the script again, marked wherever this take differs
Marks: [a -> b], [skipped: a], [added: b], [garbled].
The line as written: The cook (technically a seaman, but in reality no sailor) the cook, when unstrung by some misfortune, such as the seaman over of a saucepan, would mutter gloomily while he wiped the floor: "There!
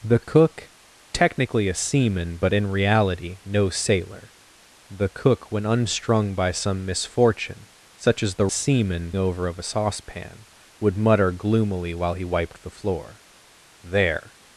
The cook (technically a seaman, but in reality no sailor) the cook, when unstrung by some misfortune, such as the seaman over of a saucepan, would mutter gloomily while he wiped the floor: "There!